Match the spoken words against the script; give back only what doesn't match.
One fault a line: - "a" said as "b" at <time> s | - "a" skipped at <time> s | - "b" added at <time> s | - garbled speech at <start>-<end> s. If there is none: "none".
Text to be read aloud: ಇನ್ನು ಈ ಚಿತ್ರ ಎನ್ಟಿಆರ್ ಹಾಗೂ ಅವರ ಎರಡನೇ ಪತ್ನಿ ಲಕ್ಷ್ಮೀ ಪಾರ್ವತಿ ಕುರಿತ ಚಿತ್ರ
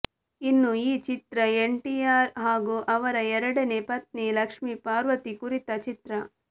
none